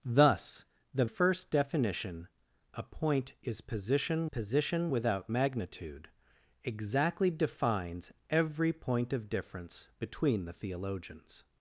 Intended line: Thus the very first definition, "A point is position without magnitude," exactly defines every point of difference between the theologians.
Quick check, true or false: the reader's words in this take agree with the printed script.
false